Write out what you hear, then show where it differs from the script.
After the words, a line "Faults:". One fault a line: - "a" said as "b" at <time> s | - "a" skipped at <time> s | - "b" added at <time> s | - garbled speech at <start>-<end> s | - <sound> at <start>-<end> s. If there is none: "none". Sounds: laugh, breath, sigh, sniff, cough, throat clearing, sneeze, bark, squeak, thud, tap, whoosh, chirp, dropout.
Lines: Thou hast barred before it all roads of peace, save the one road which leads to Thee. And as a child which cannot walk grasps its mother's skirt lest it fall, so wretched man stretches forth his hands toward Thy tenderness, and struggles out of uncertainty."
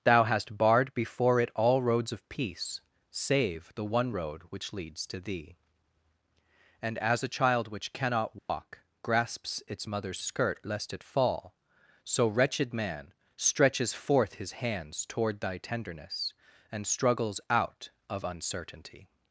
Thou hast barred before it all roads of peace, save the one road which leads to Thee. And as a child which cannot walk grasps its mother's skirt lest it fall, so wretched man stretches forth his hands toward Thy tenderness, and struggles out of uncertainty."
Faults:
- dropout at 8.4-8.5 s